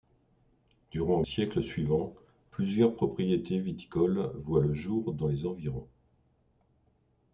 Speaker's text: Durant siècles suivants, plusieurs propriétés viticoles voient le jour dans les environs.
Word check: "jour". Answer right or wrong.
right